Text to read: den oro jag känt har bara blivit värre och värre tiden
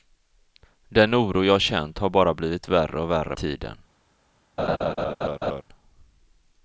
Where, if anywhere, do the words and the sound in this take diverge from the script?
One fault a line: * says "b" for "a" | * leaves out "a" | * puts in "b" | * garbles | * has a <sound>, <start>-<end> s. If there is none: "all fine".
* has a laugh, 4.6-5.6 s